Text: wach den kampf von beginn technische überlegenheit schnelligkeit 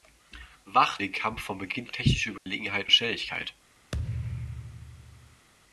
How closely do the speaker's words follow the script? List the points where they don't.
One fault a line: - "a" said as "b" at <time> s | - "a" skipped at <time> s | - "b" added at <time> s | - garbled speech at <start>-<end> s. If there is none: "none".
none